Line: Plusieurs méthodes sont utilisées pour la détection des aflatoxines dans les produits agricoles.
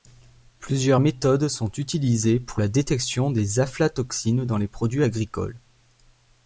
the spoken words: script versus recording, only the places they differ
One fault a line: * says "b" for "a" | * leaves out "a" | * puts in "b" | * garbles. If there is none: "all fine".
all fine